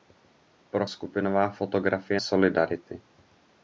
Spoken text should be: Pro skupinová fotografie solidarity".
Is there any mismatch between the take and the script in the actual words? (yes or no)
no